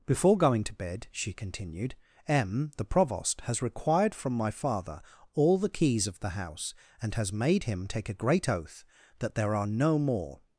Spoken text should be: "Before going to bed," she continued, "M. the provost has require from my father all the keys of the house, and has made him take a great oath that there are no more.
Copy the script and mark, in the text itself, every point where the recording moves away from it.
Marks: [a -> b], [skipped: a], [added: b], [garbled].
"Before going to bed," she continued, "M. the provost has [require -> required] from my father all the keys of the house, and has made him take a great oath that there are no more.